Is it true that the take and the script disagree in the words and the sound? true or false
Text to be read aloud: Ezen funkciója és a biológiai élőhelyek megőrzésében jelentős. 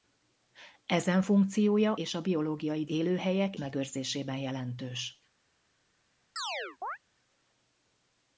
true